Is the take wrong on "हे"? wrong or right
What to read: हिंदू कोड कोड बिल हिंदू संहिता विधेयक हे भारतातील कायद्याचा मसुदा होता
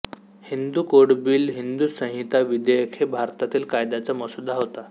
right